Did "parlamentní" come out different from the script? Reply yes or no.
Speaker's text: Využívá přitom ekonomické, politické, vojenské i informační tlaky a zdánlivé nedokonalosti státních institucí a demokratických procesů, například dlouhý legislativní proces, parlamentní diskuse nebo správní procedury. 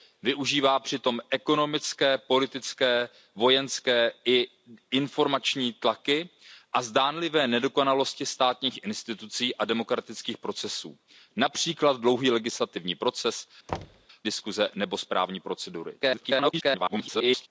yes